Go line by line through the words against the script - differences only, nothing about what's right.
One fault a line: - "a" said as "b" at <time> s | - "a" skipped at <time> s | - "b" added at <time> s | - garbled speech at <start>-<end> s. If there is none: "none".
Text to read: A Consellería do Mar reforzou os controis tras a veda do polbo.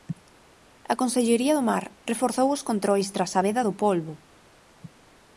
none